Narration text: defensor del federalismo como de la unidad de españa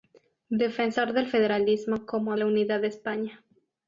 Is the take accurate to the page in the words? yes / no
no